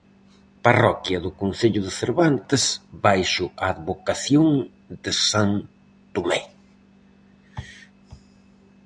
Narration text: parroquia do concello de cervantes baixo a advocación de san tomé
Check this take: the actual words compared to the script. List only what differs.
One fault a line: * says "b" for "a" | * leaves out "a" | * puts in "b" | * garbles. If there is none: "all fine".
all fine